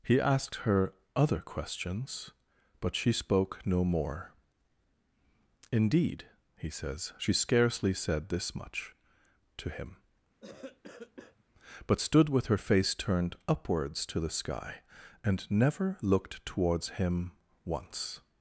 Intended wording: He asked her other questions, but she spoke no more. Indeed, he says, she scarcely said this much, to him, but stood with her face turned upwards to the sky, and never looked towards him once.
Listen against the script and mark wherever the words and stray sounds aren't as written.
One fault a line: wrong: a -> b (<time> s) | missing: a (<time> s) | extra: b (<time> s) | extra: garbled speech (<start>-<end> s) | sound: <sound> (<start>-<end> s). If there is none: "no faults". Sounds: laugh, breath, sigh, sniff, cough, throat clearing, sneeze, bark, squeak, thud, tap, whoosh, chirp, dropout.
sound: cough (10.4-11.4 s)